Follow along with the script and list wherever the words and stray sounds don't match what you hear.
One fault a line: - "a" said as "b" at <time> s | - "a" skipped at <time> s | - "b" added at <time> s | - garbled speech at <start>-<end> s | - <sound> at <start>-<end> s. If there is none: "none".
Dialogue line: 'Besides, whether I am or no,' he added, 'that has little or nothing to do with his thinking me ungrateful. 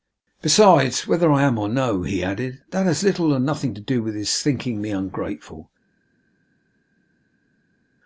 none